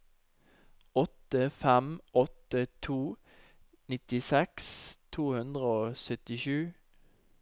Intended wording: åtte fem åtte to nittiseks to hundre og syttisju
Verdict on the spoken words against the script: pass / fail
pass